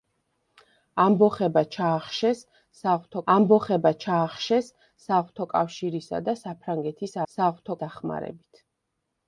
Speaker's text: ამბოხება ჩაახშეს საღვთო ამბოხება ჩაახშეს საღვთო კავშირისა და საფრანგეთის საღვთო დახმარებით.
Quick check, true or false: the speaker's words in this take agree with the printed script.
true